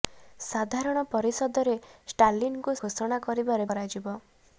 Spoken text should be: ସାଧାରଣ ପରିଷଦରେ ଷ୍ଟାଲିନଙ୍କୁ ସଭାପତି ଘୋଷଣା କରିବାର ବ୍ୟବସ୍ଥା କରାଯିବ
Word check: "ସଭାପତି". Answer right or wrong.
wrong